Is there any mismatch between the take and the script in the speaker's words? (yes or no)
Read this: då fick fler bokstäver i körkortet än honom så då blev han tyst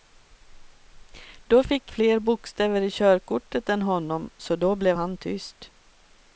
no